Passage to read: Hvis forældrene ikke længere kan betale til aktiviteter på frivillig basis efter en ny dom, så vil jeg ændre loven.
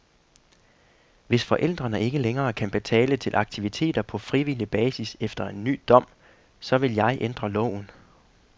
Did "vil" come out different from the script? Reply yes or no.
no